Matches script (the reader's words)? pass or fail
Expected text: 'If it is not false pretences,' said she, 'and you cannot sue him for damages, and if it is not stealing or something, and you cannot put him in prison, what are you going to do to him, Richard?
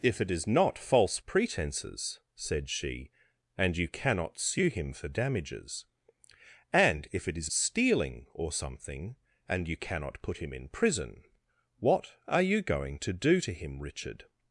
fail